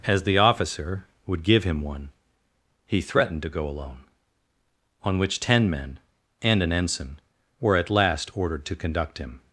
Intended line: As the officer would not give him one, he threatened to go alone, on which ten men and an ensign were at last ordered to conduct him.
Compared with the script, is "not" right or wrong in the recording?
wrong